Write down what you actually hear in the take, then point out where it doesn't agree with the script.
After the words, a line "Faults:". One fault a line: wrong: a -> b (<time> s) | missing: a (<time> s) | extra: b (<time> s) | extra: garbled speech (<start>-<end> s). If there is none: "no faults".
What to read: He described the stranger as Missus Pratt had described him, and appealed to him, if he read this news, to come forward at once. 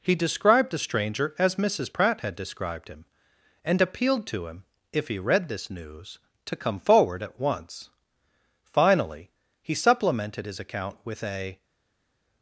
He described the stranger as Missus Pratt had described him, and appealed to him, if he read this news, to come forward at once. Finally, he supplemented his account with a
Faults:
extra: Finally he supplemented his account with a (8.6 s)